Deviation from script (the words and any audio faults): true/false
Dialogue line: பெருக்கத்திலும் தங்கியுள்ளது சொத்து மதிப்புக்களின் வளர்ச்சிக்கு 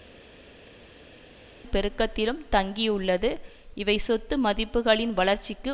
true